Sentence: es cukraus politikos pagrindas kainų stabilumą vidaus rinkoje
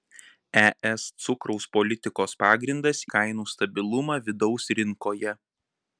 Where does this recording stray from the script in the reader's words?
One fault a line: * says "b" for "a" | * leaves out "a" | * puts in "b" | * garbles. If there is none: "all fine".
all fine